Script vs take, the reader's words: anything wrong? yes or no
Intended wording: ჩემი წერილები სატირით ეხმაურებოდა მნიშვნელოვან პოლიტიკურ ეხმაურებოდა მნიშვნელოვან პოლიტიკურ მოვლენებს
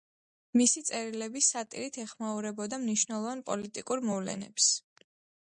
yes